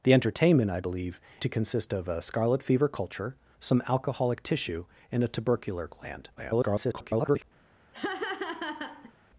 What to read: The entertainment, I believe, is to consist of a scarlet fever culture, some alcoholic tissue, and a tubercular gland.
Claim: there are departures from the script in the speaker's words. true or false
true